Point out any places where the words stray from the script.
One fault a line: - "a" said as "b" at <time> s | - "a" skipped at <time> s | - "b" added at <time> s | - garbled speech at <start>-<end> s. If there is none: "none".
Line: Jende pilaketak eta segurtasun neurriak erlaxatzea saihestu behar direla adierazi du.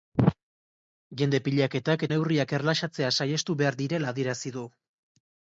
- "eta segurtasun" skipped at 2.1 s